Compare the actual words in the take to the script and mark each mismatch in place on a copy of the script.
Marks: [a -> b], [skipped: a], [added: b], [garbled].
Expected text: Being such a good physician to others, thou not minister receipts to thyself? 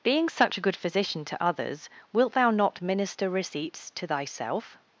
Being such a good physician to others, [added: wilt] thou not minister receipts to thyself?